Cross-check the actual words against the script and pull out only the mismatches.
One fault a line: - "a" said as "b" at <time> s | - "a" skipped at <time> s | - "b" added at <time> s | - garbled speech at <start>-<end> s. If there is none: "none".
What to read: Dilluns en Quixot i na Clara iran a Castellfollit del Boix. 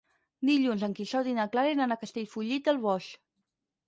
none